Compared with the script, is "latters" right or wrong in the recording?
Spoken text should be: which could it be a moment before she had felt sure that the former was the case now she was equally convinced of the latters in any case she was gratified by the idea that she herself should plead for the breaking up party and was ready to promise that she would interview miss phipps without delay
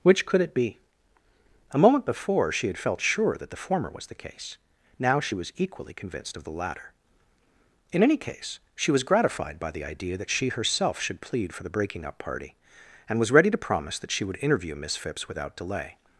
wrong